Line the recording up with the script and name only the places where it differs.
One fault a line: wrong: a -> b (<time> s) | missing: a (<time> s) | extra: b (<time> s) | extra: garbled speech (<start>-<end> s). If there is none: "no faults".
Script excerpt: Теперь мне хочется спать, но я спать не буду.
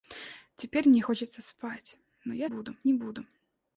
wrong: спать -> буду (2.4 s)